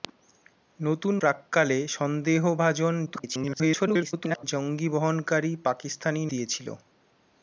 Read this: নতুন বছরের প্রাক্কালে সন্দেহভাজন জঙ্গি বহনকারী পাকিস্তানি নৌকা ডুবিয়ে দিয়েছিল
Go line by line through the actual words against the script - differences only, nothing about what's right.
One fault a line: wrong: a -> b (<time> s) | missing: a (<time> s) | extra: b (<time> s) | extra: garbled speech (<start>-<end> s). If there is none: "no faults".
missing: বছরের (1.1 s)
extra: garbled speech (3.1-4.4 s)
missing: নৌকা ডুবিয়ে (6.2 s)